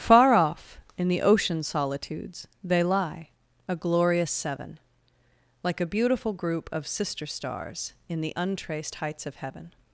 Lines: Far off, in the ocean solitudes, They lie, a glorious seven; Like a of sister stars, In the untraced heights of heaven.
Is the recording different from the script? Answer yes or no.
yes